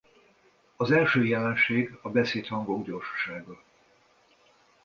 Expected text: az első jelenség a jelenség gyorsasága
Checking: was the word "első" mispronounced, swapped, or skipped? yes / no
no